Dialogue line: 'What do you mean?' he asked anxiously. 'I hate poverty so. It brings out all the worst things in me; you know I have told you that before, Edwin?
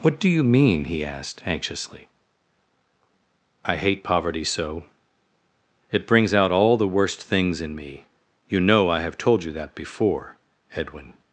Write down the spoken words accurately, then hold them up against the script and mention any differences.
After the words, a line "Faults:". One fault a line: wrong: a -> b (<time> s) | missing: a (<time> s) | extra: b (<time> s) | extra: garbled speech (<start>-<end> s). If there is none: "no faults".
'What do you mean?' he asked anxiously. 'I hate poverty so. It brings out all the worst things in me; you know I have told you that before, Edwin?
Faults:
no faults